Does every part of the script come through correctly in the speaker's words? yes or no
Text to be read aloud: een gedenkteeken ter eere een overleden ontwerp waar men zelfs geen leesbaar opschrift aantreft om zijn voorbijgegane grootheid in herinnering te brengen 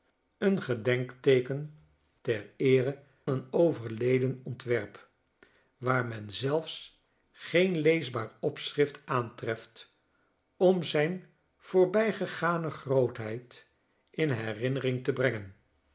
yes